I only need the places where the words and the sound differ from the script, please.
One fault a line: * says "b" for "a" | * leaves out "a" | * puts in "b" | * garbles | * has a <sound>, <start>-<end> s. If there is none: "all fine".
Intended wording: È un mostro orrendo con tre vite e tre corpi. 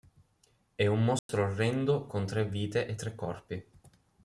* has a dropout, 1.2-1.3 s